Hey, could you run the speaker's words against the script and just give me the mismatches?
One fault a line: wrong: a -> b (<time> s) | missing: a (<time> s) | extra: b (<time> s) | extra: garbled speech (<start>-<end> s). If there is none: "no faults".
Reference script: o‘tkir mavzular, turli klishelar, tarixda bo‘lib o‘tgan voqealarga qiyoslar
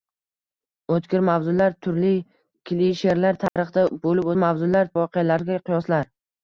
wrong: o‘tgan -> mavzular (4.4 s)